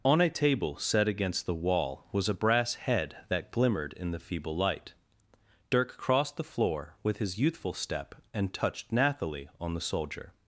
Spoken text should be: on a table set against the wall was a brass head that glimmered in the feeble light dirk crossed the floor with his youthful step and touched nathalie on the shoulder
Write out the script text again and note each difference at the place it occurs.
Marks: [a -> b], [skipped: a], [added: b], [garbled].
on a table set against the wall was a brass head that glimmered in the feeble light dirk crossed the floor with his youthful step and touched nathalie on the [shoulder -> soldier]